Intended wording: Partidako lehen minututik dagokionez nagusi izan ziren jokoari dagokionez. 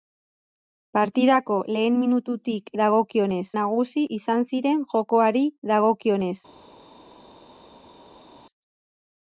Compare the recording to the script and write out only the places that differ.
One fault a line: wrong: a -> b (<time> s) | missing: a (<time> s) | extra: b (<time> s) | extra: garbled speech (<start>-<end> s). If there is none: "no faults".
no faults